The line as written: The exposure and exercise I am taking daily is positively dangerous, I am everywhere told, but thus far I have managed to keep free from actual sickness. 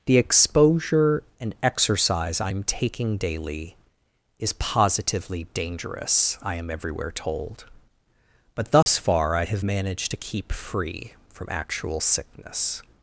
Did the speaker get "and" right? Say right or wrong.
right